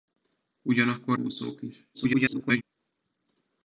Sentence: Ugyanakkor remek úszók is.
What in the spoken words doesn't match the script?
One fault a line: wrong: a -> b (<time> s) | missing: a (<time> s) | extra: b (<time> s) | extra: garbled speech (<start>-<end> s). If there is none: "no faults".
missing: remek (1.2 s)
extra: garbled speech (1.9-2.6 s)